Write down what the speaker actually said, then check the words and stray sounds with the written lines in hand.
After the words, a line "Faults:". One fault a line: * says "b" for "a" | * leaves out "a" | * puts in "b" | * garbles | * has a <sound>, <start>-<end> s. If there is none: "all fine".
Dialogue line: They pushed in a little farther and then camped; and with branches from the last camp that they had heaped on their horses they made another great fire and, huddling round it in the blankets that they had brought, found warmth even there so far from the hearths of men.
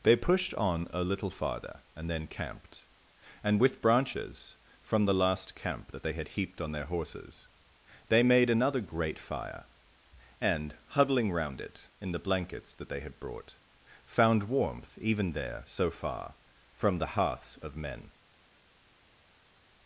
They pushed on a little farther and then camped; and with branches from the last camp that they had heaped on their horses they made another great fire and, huddling round it in the blankets that they had brought, found warmth even there so far from the hearths of men.
Faults:
* says "on" for "in"